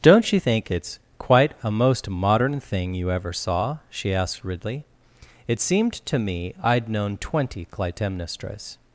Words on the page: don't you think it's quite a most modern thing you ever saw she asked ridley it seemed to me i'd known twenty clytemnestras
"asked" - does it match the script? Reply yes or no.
yes